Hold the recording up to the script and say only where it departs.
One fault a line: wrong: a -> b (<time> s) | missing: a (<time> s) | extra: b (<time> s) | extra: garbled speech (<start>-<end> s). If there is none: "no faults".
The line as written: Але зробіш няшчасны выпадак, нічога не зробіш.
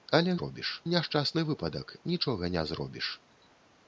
no faults